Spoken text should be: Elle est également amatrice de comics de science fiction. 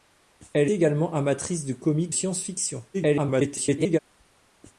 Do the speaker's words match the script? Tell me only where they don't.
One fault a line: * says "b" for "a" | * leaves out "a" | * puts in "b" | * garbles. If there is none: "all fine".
* leaves out "est"
* leaves out "de"
* garbles